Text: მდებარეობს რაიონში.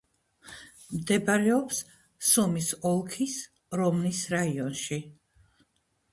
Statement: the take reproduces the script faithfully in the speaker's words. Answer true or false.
false